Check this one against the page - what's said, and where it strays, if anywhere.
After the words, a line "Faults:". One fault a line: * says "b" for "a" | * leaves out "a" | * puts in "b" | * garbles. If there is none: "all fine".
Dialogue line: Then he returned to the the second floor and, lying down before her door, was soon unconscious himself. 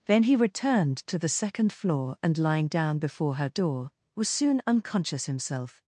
Then he returned to the second floor and, lying down before her door, was soon unconscious himself.
Faults:
* leaves out "the"